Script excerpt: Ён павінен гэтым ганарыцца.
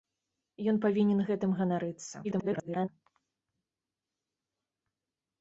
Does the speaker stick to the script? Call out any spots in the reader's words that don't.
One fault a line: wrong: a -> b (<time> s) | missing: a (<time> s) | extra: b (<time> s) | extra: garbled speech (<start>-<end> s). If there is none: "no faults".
extra: garbled speech (2.2-2.9 s)